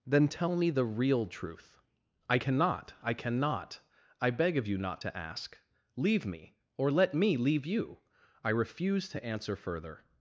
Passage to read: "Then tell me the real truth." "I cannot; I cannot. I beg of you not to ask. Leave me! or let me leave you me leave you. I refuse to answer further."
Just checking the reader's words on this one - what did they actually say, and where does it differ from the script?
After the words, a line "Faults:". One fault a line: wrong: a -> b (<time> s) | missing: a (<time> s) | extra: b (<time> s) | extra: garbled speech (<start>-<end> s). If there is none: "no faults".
"Then tell me the real truth." "I cannot; I cannot. I beg of you not to ask. Leave me! or let me leave you. I refuse to answer further."
Faults:
missing: me leave you (8.0 s)